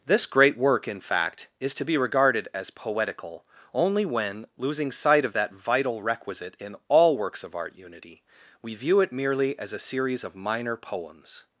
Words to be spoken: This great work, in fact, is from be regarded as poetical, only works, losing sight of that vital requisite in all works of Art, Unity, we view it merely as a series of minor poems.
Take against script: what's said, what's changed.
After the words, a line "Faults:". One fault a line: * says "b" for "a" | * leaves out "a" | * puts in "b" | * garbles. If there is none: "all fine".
This great work, in fact, is to be regarded as poetical, only when, losing sight of that vital requisite in all works of Art, Unity, we view it merely as a series of minor poems.
Faults:
* says "to" for "from"
* says "when" for "works"